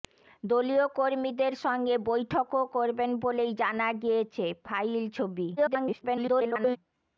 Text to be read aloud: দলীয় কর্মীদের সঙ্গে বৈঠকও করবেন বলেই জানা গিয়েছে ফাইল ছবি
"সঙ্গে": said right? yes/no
yes